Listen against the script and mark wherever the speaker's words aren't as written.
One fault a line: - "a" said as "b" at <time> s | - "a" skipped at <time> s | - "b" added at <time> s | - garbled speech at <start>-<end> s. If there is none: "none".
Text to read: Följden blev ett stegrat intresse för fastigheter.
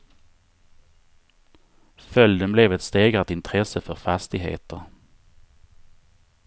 none